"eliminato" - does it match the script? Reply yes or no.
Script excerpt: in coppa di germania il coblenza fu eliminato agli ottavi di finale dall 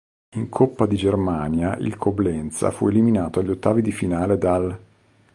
yes